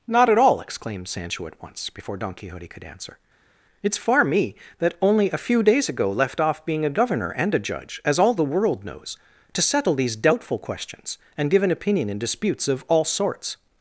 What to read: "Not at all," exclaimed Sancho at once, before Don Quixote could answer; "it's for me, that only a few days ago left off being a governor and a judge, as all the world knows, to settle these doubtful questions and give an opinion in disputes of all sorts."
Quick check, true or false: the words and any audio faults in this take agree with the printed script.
false